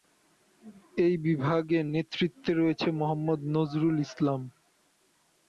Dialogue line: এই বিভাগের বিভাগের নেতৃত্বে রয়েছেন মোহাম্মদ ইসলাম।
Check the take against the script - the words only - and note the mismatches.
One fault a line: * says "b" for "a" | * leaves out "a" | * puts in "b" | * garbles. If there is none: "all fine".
* leaves out "বিভাগের"
* puts in "নজরুল"